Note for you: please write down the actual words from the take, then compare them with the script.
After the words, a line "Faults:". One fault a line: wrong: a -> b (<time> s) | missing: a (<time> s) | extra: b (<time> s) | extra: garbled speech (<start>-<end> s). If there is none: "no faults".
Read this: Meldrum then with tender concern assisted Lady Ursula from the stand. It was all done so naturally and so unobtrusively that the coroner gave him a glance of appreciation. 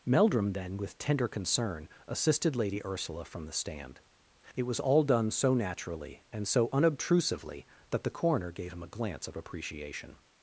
Meldrum then with tender concern assisted Lady Ursula from the stand. It was all done so naturally and so unobtrusively that the coroner gave him a glance of appreciation.
Faults:
no faults